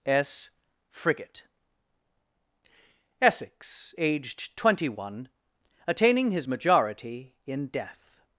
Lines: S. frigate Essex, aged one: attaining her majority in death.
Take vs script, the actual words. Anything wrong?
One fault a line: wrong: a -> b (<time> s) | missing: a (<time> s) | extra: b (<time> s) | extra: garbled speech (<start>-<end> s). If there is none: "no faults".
extra: twenty (4.5 s)
wrong: her -> his (6.3 s)